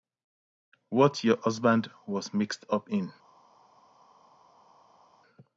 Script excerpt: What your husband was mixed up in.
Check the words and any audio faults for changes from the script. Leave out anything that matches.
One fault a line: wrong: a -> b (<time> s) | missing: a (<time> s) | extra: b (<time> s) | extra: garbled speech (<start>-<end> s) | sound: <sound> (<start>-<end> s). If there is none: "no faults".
no faults